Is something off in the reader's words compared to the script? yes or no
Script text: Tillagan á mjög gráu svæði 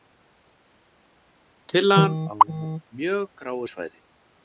no